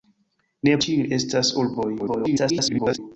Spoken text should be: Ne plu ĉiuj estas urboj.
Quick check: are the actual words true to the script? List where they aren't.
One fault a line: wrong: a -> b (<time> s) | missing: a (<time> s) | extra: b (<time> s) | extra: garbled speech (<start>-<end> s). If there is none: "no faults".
missing: plu (0.7 s)
extra: garbled speech (2.0-3.0 s)